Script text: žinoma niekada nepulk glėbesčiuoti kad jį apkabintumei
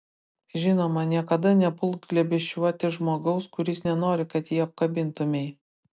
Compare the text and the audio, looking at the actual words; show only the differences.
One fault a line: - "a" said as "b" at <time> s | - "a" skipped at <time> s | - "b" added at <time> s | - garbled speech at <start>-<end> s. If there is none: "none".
- "žmogaus kuris nenori" added at 3.0 s